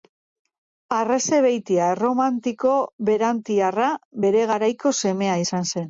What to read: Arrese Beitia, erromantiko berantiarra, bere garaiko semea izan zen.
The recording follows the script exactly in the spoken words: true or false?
true